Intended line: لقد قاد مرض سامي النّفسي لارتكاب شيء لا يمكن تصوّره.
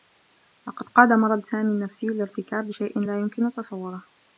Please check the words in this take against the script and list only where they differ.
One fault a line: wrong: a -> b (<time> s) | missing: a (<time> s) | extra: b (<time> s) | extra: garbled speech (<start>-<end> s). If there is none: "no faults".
no faults